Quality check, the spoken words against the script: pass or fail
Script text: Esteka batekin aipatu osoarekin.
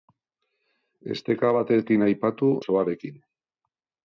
pass